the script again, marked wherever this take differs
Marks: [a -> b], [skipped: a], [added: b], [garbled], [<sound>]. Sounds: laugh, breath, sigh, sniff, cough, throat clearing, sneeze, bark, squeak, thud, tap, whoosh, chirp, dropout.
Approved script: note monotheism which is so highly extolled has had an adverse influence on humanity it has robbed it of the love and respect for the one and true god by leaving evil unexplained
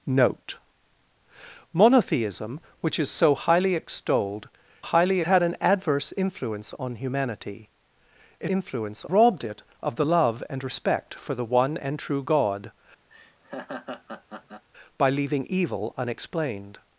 note monotheism which is so highly extolled [has -> highly] had an adverse influence on humanity it [has -> influence] robbed it of the love and respect for the one and true god [laugh] by leaving evil unexplained